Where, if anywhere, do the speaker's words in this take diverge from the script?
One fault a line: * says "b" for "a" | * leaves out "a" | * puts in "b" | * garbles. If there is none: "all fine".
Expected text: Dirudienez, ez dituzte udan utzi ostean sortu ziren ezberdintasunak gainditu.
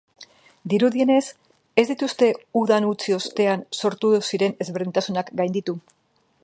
all fine